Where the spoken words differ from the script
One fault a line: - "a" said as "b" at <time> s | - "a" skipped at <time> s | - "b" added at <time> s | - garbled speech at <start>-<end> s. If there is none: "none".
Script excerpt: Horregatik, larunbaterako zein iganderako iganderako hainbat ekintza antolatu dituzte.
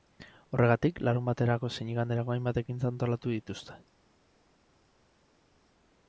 - "iganderako" skipped at 2.4 s